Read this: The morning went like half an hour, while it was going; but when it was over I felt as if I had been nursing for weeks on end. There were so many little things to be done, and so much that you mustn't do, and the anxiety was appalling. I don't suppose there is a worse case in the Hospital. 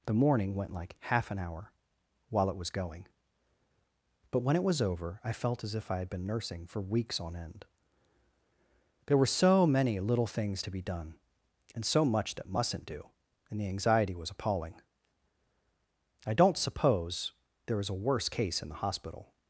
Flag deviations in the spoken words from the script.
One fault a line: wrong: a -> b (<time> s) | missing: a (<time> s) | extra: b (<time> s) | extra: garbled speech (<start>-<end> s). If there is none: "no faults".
missing: you (12.5 s)